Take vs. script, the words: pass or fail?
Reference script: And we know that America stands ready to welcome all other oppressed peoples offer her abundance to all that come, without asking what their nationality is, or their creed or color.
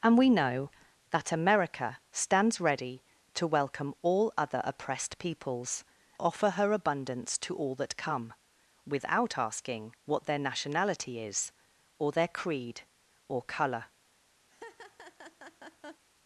pass